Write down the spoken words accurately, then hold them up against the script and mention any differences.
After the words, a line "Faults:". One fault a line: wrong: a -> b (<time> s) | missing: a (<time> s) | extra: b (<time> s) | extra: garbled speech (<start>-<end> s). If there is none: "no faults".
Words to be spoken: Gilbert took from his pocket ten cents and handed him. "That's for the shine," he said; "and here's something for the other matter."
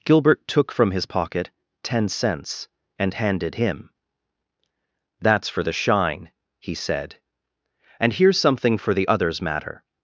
Gilbert took from his pocket ten cents and handed him. "That's for the shine," he said; "and here's something for the others matter."
Faults:
wrong: other -> others (9.1 s)